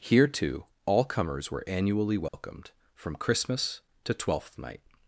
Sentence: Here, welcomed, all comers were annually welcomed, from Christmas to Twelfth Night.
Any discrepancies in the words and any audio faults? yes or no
yes